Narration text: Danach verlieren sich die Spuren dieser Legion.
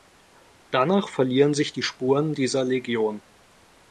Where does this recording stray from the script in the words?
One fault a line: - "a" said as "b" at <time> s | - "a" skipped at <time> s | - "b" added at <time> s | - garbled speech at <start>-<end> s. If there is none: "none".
none